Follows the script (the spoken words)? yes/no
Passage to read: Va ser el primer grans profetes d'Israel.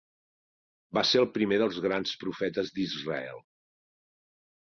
no